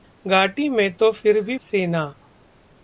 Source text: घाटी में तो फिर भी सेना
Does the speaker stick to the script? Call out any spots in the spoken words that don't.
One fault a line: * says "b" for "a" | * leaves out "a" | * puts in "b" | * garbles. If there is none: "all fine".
all fine